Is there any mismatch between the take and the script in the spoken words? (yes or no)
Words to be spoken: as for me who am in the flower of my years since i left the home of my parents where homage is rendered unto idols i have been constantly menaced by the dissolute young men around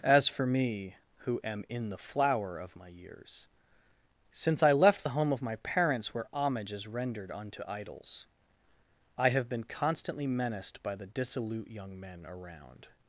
no